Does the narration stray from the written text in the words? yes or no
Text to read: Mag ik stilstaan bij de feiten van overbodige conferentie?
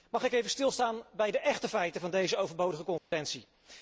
yes